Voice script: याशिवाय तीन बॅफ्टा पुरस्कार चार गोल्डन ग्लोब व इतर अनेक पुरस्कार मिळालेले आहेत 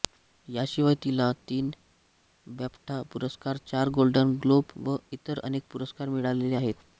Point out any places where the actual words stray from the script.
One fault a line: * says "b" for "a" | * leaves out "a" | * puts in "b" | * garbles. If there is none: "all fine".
* puts in "तिला"